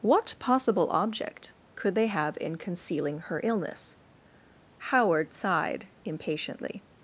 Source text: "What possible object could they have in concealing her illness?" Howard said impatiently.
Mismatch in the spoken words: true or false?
true